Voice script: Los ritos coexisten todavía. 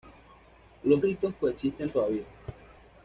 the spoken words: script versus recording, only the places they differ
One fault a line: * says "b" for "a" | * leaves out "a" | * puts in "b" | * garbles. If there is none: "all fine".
all fine